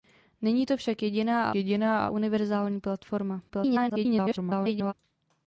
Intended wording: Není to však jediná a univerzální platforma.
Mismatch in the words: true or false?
true